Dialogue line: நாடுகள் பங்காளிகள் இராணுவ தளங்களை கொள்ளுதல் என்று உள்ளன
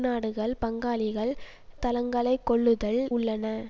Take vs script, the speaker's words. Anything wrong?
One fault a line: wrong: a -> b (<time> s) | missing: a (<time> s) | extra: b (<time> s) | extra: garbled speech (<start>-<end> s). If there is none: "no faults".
missing: இராணுவ (1.3 s)
missing: என்று (3.0 s)